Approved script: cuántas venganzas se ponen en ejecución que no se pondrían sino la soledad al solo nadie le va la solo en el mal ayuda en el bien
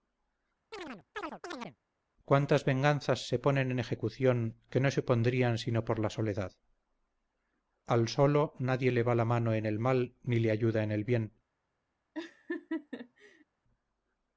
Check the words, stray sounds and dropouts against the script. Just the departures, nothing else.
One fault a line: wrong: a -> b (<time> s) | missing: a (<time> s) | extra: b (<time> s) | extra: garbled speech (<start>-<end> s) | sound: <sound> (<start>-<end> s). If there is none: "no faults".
sound: chirp (0.7-1.8 s)
extra: por (5.8 s)
wrong: solo -> mano (9.2 s)
extra: ni le (10.2 s)
sound: laugh (12.1-13.4 s)